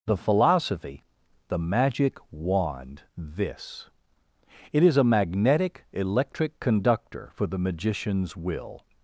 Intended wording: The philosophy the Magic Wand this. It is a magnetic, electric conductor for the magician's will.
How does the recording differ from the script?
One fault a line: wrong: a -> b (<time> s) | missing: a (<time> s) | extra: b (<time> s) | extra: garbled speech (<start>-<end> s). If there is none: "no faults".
no faults